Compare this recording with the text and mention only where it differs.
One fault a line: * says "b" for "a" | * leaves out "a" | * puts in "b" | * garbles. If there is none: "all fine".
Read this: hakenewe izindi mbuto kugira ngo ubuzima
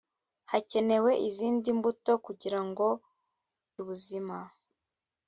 all fine